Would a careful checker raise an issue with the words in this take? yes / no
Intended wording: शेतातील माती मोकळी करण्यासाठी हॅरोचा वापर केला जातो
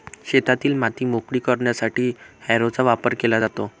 no